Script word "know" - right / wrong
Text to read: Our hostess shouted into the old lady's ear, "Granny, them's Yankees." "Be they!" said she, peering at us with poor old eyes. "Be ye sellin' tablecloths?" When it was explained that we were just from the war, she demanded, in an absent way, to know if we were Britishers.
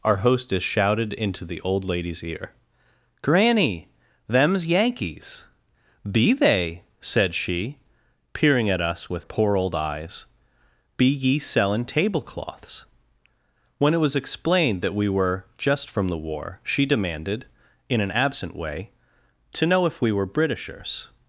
right